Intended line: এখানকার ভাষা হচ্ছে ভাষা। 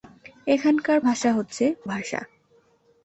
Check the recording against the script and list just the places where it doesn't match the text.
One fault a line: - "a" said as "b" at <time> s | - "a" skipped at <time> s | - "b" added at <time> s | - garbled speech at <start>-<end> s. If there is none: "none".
none